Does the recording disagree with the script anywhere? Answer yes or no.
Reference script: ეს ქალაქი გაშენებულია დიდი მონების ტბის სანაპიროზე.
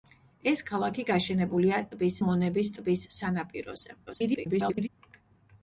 yes